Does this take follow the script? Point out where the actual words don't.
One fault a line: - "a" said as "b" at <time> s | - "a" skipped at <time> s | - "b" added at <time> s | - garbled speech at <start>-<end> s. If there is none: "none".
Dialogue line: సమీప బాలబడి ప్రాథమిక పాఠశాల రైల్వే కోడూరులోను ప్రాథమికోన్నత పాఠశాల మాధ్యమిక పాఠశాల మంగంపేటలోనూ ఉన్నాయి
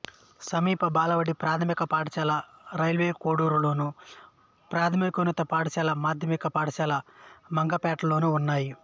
none